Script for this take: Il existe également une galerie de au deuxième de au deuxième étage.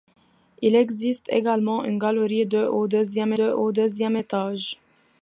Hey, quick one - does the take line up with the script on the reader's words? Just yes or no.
yes